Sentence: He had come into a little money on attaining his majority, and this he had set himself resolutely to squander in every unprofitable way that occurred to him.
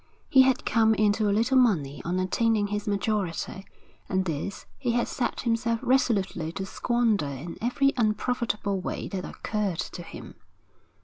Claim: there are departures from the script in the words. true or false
false